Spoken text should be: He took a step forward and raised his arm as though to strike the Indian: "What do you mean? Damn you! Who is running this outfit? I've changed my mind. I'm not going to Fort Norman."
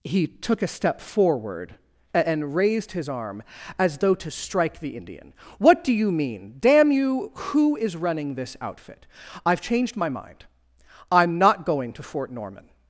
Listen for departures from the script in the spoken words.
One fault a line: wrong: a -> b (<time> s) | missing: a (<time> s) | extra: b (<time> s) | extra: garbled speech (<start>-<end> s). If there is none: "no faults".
no faults